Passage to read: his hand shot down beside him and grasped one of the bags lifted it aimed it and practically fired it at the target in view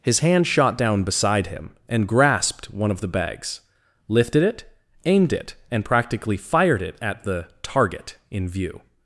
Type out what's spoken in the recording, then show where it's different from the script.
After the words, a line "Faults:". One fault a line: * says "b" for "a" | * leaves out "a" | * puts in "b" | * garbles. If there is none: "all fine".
his hand shot down beside him and grasped one of the bags lifted it aimed it and practically fired it at the target in view
Faults:
all fine